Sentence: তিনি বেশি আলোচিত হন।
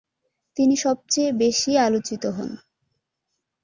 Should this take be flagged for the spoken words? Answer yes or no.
yes